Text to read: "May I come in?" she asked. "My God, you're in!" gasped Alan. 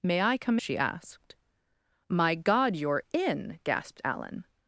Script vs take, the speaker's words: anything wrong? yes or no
yes